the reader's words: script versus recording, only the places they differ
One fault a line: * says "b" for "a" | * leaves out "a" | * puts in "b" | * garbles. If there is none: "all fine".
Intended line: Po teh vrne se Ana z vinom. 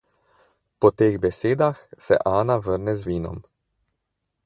* says "besedah" for "vrne"
* puts in "vrne"